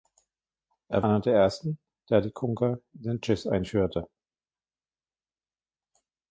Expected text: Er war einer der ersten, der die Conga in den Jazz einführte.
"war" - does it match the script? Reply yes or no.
no